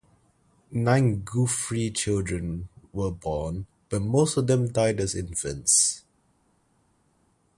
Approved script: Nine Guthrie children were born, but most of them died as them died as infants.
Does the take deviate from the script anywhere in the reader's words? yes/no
yes